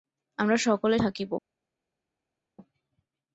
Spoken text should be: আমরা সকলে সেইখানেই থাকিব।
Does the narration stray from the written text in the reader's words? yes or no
yes